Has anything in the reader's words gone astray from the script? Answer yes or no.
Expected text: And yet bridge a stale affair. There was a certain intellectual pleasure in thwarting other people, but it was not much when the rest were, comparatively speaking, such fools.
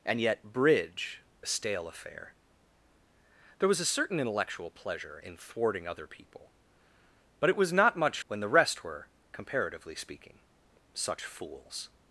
no